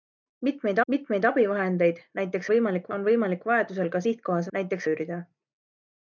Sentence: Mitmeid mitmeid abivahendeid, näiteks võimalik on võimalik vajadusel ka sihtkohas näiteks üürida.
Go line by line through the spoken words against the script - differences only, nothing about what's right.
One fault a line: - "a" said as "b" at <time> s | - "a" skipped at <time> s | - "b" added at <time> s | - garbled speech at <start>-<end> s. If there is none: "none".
none